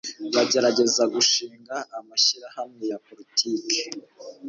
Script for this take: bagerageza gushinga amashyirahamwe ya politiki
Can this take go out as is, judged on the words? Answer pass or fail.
pass